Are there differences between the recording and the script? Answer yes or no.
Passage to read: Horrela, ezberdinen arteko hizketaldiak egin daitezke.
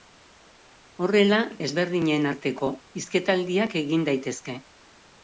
no